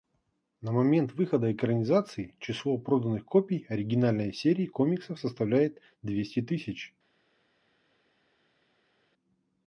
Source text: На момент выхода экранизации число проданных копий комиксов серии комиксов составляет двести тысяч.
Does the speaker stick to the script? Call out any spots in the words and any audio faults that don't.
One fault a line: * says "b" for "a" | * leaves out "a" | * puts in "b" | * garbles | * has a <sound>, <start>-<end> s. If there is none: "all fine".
* says "оригинальной" for "комиксов"